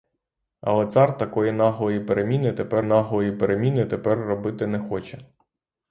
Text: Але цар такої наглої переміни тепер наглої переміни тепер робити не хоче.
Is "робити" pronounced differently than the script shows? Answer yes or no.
no